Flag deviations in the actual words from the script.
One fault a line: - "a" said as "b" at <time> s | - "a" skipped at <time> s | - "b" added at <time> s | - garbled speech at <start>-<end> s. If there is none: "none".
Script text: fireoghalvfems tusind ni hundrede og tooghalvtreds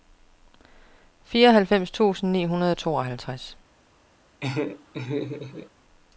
none